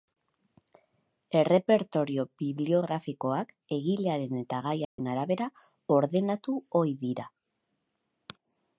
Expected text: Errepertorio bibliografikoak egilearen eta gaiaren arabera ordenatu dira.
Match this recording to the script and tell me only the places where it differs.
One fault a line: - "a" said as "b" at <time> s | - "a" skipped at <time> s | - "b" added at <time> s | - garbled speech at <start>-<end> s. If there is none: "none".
- "ohi" added at 6.8 s